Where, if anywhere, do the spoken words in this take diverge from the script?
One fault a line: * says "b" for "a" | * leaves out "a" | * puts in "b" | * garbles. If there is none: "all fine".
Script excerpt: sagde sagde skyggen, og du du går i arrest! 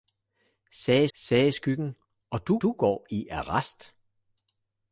all fine